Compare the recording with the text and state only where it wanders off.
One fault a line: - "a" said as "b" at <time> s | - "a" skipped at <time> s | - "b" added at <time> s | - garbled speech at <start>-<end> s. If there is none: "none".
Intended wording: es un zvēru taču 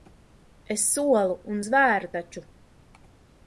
- "solu" added at 0.9 s